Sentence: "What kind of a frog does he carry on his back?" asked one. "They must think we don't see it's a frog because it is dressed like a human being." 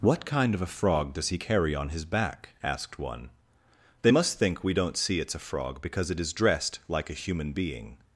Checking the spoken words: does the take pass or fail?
pass